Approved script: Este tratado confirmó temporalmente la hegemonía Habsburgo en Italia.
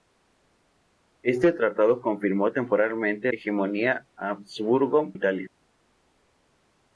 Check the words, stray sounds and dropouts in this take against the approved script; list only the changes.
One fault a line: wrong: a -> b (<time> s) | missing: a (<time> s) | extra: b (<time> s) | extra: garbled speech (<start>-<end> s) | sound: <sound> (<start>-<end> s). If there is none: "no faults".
missing: la (3.3 s)
missing: en (5.1 s)